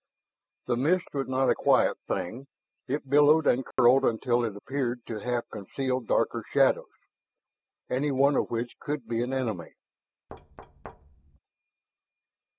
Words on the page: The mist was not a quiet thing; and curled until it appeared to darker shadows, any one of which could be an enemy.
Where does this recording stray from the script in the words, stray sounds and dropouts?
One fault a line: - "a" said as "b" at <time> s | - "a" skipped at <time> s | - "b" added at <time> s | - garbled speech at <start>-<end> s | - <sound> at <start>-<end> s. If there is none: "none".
- "it billowed" added at 2.9 s
- dropout at 3.7-3.8 s
- "half conceal" added at 5.2 s
- thud at 10.3-11.4 s